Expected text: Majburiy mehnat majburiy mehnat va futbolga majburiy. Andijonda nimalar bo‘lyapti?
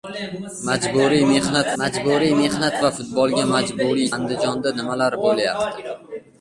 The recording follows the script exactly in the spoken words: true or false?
true